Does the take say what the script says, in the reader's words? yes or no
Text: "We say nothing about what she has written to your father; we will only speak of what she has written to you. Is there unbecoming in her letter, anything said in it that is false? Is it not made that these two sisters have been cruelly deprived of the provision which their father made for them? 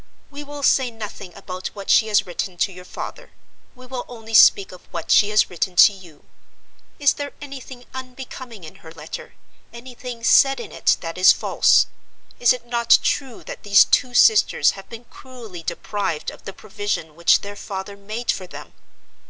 no